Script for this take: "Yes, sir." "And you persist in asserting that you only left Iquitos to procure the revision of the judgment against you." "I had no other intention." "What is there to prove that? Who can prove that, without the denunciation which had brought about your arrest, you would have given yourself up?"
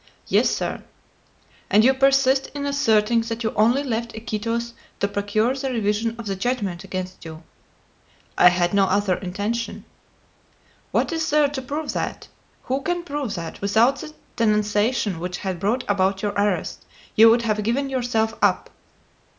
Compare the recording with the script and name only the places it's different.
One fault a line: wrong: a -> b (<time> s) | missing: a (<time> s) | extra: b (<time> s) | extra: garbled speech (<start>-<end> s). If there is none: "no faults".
no faults